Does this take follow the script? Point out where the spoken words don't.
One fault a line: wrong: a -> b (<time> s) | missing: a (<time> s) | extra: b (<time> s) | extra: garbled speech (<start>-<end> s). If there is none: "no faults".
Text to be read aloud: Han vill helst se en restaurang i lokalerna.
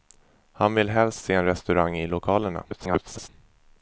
extra: garbled speech (2.7-3.3 s)